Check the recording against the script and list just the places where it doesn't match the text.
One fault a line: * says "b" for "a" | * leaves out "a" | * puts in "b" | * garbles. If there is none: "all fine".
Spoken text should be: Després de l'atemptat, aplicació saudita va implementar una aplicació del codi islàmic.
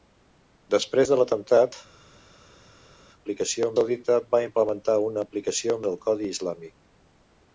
all fine